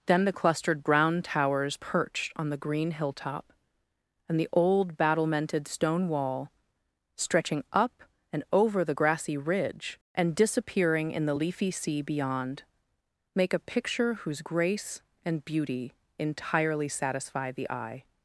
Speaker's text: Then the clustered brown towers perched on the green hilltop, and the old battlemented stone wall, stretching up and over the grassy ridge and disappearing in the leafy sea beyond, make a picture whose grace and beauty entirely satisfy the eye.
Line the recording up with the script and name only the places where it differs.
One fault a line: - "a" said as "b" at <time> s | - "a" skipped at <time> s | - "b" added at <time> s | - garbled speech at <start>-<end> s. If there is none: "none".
none